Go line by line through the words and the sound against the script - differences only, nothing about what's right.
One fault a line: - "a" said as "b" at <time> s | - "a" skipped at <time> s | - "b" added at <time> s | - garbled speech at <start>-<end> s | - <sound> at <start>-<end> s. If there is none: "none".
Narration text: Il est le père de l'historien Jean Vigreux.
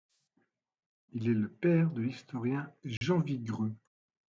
- dropout at 3.0-3.0 s